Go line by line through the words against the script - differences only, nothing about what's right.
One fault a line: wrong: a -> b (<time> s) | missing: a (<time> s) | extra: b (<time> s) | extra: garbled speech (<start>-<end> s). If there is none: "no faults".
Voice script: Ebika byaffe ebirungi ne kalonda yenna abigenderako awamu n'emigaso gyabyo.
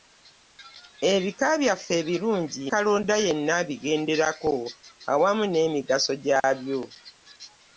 missing: ne (2.6 s)